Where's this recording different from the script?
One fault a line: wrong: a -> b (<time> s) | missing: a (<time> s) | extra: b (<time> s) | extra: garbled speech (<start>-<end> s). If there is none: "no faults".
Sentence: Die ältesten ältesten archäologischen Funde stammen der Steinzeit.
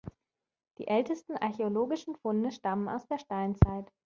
missing: ältesten (1.4 s)
extra: aus (2.9 s)